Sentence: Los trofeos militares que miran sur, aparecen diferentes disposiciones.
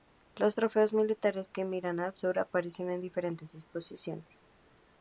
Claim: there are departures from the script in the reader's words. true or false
true